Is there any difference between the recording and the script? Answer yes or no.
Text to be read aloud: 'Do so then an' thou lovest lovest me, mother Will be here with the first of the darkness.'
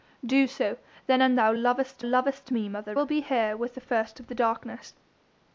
no